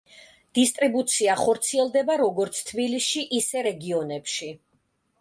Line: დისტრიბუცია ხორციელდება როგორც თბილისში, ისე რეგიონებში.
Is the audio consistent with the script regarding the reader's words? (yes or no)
yes